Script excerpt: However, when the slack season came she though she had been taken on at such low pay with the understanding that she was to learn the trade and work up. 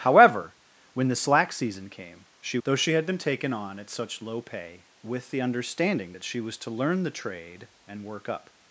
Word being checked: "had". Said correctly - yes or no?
yes